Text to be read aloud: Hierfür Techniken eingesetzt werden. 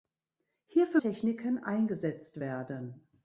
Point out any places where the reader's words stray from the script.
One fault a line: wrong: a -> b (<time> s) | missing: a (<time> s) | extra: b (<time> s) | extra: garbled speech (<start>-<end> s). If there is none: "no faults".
no faults